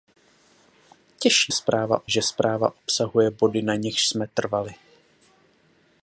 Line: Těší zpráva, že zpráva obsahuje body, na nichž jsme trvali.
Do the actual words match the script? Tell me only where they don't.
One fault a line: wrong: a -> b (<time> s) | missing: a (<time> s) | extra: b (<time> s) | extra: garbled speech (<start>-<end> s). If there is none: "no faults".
no faults